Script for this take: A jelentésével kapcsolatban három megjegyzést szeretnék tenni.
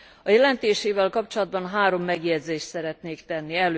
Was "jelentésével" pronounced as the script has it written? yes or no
yes